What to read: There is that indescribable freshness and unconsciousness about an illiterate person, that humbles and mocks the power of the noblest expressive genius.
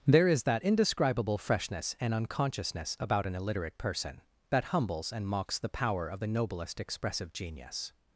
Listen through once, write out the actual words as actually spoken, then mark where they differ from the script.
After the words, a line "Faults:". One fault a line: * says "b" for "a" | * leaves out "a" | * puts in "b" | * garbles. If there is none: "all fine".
There is that indescribable freshness and unconsciousness about an illiterate person, that humbles and mocks the power of the noblest expressive genius.
Faults:
all fine